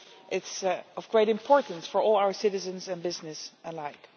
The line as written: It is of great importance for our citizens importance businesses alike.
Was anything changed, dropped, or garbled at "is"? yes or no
no